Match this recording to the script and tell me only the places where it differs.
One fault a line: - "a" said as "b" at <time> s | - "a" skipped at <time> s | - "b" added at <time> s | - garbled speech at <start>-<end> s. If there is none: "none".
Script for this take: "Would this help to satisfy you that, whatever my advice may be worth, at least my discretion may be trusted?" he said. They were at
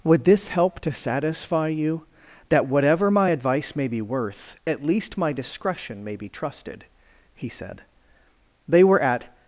none